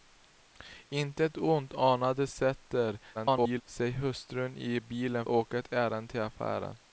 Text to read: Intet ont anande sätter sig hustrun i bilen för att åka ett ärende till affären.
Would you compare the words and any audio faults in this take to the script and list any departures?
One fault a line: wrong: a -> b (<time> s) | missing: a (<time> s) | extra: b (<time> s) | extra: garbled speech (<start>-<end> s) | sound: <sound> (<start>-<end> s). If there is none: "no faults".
extra: garbled speech (3.1-3.6 s)
missing: för att (5.3 s)